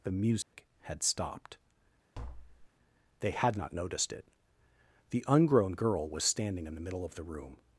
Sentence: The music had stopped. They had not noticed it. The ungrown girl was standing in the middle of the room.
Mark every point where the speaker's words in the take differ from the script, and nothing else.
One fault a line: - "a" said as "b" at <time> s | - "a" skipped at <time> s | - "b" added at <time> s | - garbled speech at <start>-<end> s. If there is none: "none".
none